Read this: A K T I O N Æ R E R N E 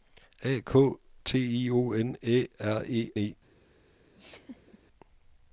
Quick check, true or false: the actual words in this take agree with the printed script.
false